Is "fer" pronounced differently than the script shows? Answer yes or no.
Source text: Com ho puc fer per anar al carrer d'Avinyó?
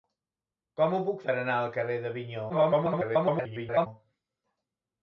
yes